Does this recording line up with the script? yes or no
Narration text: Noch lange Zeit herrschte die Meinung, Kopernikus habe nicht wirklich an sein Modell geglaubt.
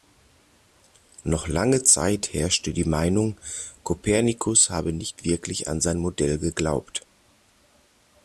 yes